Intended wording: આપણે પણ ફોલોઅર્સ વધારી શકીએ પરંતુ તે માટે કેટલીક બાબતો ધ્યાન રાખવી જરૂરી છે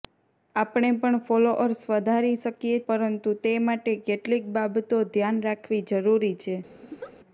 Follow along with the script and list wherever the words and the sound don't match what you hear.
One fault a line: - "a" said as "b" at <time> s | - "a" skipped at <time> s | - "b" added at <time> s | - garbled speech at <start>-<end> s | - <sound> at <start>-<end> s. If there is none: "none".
- laugh at 6.8-7.1 s